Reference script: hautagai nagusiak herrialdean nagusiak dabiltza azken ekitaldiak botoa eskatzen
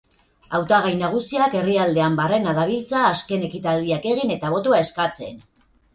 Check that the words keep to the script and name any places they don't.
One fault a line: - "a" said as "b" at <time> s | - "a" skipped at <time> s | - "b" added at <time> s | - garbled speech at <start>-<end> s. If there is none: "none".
- "nagusiak" said as "barrena" at 2.2 s
- "egin eta" added at 4.1 s